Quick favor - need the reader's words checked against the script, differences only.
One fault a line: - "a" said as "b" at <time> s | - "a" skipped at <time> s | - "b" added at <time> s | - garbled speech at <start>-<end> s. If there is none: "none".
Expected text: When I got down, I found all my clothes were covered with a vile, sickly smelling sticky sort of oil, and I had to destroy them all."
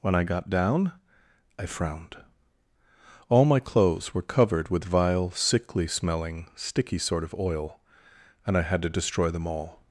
- "found" said as "frowned" at 1.7 s
- "a" skipped at 4.8 s